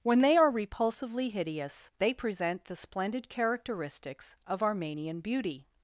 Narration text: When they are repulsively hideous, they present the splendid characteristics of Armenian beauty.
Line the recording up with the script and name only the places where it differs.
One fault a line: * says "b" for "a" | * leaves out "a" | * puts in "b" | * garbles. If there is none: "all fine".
all fine